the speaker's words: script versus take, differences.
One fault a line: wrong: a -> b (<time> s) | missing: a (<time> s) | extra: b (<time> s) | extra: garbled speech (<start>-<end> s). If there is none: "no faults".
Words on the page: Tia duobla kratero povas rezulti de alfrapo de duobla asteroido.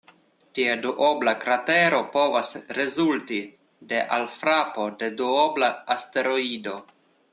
no faults